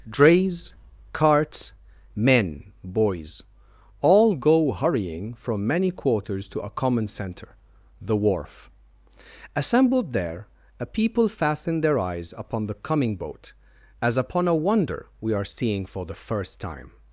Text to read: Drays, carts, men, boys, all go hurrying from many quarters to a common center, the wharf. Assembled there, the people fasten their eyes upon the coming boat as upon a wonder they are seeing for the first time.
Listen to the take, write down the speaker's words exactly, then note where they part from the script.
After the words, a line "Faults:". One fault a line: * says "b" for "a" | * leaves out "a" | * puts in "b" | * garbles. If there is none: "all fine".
Drays, carts, men, boys, all go hurrying from many quarters to a common center, the wharf. Assembled there, a people fasten their eyes upon the coming boat as upon a wonder we are seeing for the first time.
Faults:
* says "a" for "the"
* says "we" for "they"